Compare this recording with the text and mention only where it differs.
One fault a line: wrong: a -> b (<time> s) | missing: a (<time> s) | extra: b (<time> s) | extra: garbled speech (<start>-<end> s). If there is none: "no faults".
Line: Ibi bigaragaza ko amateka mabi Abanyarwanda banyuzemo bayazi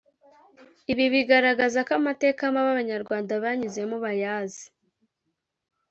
no faults